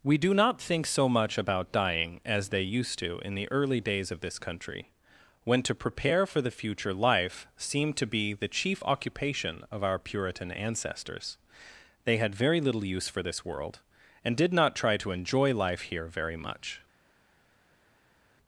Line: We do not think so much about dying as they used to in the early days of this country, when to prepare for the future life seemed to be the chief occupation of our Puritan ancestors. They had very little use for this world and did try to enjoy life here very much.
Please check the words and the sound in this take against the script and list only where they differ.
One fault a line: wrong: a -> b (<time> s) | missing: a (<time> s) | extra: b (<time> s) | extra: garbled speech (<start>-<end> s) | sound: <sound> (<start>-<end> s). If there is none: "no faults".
extra: not (14.5 s)